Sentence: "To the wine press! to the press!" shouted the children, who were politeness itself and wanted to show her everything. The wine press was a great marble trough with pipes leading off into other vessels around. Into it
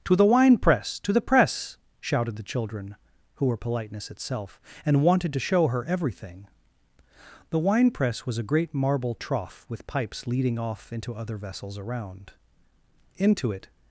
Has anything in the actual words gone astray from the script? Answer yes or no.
no